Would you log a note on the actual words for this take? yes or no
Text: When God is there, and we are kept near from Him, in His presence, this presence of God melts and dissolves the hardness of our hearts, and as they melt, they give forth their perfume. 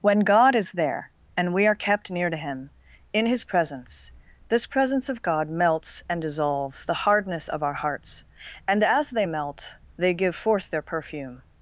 yes